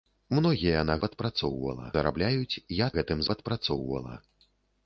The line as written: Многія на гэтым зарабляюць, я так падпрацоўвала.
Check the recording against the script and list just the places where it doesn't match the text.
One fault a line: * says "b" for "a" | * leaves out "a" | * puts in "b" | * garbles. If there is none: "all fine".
* says "падпрацоўвала" for "гэтым"
* says "гэтым" for "так"